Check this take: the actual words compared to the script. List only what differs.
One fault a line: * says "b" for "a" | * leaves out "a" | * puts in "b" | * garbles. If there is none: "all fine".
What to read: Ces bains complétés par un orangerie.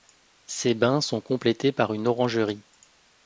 * puts in "sont"
* says "une" for "un"